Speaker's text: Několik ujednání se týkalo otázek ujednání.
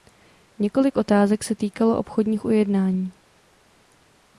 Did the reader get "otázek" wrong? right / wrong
wrong